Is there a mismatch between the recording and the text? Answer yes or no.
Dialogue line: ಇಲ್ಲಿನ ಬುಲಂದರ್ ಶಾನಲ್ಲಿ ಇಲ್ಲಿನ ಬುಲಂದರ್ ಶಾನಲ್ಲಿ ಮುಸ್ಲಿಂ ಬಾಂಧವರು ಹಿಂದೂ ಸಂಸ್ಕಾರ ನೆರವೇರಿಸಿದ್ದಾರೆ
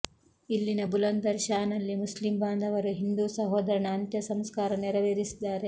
yes